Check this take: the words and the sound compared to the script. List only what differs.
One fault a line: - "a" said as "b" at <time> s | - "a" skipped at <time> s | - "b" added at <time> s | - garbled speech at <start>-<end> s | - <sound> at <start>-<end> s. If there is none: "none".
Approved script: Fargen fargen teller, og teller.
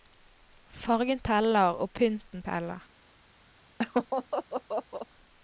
- "fargen" skipped at 1.2 s
- "pynten" added at 1.9 s
- laugh at 3.8-5.1 s